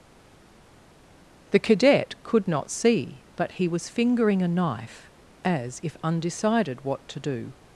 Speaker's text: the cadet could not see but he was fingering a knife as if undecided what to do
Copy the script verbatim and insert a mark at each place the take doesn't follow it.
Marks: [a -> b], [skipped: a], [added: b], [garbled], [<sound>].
the cadet could not see but he was fingering a knife as if undecided what to do